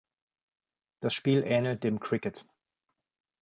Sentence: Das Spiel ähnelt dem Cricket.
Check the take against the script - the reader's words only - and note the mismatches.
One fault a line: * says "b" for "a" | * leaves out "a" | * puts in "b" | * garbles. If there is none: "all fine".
all fine